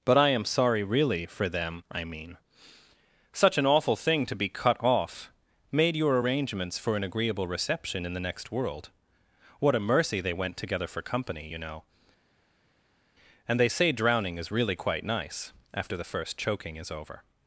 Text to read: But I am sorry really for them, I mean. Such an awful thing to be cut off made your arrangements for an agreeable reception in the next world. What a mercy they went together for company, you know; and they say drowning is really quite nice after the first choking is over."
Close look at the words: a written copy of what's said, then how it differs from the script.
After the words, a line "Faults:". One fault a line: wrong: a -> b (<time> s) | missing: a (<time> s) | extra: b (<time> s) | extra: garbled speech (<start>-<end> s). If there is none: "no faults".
But I am sorry really for them, I mean. Such an awful thing to be cut off made your arrangements for an agreeable reception in the next world. What a mercy they went together for company, you know; and they say drowning is really quite nice after the first choking is over."
Faults:
no faults